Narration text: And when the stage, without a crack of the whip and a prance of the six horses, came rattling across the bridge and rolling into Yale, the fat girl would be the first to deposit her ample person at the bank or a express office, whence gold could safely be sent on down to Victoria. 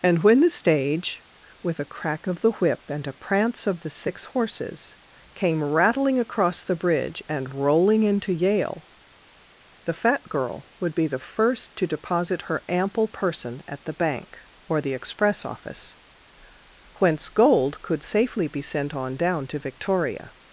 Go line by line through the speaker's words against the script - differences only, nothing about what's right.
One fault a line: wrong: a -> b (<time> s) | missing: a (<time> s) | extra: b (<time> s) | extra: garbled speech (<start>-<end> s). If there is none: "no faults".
wrong: without -> with (1.6 s)
wrong: a -> the (14.8 s)